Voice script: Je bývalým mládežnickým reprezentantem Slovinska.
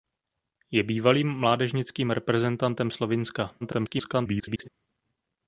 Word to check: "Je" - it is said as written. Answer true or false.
true